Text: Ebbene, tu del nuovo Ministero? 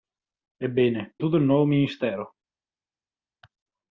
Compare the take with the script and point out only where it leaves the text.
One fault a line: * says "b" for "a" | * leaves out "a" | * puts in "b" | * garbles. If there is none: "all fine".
all fine